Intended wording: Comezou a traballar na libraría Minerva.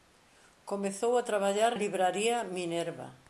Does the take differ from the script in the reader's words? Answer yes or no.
yes